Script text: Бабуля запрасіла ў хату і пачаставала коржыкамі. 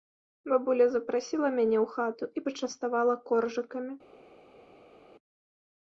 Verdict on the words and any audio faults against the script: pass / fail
fail